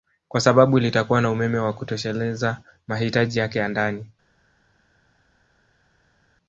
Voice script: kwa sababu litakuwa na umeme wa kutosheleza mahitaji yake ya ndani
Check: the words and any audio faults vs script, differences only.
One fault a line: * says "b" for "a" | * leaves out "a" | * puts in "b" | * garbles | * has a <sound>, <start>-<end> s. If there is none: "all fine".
all fine